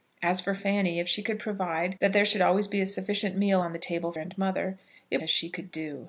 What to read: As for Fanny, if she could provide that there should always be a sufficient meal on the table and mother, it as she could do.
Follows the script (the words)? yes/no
yes